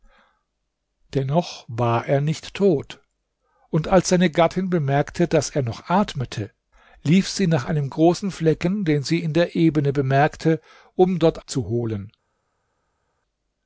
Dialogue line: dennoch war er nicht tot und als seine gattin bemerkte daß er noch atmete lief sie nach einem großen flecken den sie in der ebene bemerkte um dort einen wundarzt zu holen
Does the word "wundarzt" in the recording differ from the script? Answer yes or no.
yes